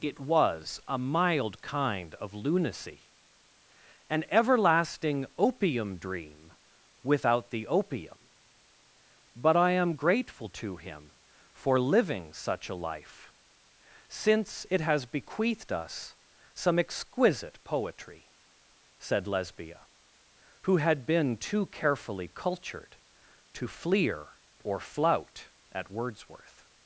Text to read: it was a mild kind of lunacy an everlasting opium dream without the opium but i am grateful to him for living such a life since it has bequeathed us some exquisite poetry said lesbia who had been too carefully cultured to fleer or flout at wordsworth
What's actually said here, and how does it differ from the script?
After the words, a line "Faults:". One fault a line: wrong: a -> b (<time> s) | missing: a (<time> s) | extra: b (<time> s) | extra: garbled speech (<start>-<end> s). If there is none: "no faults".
it was a mild kind of lunacy an everlasting opium dream without the opium but i am grateful to him for living such a life since it has bequeathed us some exquisite poetry said lesbia who had been too carefully cultured to fleer or flout at wordsworth
Faults:
no faults